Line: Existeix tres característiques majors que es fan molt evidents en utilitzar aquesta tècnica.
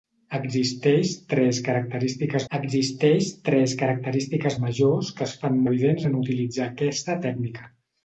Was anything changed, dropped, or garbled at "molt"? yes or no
yes